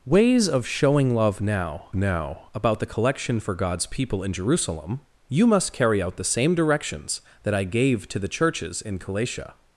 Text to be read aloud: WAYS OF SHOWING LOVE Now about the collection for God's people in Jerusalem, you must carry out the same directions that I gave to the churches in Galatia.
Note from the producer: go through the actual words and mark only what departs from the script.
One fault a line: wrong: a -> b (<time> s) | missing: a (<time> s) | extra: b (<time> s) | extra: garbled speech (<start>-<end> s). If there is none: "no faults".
extra: Now (1.9 s)